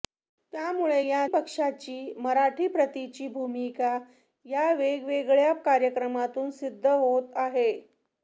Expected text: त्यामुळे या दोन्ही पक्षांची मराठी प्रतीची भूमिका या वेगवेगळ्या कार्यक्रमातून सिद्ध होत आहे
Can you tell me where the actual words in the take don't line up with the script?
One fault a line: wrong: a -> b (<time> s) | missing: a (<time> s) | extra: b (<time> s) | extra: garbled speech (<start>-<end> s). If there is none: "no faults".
missing: दोन्ही (1.3 s)